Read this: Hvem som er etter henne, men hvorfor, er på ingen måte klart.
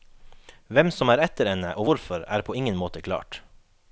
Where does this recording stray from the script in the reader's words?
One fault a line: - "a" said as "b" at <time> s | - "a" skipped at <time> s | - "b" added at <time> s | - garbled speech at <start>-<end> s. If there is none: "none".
- "men" said as "og" at 1.7 s